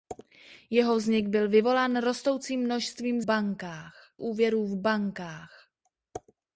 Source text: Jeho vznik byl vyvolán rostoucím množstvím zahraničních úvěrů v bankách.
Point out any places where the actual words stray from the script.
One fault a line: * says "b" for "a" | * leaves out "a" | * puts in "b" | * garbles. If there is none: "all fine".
* says "bankách" for "zahraničních"